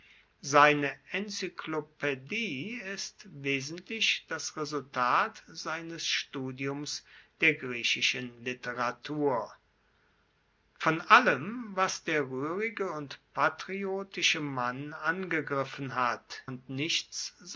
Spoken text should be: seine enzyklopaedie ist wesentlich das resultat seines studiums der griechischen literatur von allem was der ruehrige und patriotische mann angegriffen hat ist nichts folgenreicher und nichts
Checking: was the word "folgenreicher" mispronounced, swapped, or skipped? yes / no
yes